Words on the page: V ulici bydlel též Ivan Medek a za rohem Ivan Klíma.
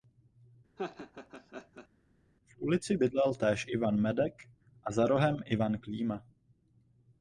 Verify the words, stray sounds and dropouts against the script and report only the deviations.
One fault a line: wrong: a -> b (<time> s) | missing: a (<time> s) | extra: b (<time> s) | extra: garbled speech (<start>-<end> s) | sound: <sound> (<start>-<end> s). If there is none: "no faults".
sound: laugh (0.8-1.9 s)